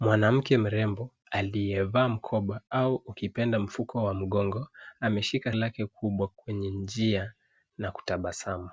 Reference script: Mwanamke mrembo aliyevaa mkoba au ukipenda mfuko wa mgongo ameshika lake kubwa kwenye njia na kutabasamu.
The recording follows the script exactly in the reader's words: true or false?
true